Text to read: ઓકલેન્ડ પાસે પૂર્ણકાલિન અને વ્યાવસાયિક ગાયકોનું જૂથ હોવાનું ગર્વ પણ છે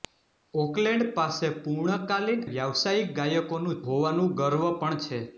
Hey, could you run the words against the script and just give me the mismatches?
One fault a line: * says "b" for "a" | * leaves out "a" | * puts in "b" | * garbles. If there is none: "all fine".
* leaves out "અને"
* leaves out "જૂથ"